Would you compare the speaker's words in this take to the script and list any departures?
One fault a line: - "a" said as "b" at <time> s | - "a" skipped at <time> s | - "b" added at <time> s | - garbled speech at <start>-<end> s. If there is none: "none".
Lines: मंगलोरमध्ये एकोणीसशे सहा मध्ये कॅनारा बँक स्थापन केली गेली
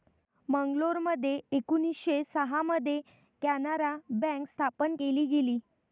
none